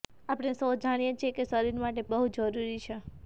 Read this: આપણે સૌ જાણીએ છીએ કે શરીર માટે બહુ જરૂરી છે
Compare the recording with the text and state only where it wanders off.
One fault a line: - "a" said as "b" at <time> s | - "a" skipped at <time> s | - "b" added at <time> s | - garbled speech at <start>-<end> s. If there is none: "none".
none